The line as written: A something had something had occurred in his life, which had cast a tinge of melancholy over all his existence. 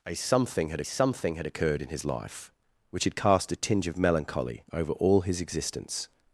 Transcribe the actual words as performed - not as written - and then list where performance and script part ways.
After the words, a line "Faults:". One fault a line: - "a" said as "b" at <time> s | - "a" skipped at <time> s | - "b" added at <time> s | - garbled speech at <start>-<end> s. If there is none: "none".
A something had something had occurred in his life, which had cast a tinge of melancholy over all his existence.
Faults:
none